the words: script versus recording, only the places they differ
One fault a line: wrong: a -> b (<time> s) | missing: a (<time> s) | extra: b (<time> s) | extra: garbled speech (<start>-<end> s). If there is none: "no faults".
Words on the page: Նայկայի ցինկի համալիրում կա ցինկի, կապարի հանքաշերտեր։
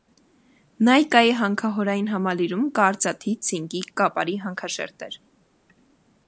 wrong: ցինկի -> հանքահորային (1.4 s)
extra: արծաթի (2.9 s)